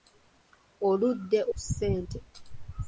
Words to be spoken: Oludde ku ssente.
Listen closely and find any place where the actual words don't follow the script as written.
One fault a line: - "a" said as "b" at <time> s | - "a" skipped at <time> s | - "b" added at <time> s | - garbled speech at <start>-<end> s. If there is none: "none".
none